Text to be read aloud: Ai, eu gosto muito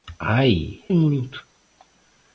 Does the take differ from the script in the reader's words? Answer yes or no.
yes